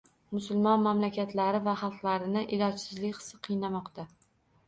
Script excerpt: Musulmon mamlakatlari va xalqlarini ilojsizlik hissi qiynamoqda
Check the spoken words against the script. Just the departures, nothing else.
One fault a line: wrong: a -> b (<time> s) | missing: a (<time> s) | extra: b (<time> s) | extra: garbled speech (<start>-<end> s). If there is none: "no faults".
no faults